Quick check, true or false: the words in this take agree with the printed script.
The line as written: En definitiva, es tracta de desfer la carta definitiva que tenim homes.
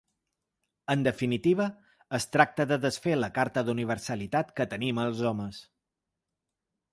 false